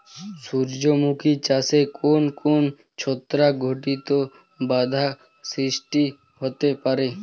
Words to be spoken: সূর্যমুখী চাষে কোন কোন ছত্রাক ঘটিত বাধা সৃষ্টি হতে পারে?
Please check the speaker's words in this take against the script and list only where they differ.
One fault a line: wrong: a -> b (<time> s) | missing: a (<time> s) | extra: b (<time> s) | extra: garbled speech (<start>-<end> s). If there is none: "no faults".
no faults